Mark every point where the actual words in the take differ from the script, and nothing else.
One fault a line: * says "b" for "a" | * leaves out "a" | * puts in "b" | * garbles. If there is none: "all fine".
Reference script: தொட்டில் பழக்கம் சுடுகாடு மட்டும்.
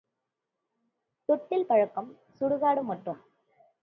all fine